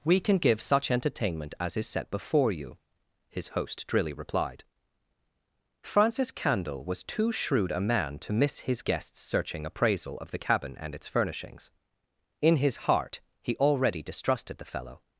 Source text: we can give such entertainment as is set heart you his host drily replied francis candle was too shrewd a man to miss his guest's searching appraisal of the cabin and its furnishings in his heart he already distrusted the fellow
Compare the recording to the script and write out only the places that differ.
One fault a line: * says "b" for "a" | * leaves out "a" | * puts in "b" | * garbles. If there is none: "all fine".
* says "before" for "heart"